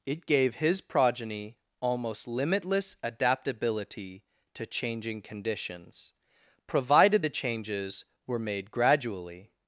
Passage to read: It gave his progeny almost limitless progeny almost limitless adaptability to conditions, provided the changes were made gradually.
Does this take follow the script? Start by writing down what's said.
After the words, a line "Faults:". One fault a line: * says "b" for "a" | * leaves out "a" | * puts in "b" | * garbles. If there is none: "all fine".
It gave his progeny almost limitless adaptability to changing conditions, provided the changes were made gradually.
Faults:
* leaves out "progeny almost limitless"
* puts in "changing"